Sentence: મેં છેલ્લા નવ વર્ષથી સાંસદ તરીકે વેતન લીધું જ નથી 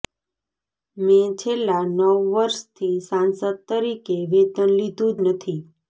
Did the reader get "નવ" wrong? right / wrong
right